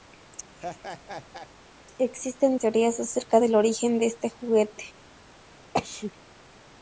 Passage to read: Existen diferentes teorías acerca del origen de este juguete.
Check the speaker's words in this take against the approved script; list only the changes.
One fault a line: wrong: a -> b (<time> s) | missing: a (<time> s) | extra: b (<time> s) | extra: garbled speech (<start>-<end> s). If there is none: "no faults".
missing: diferentes (2.6 s)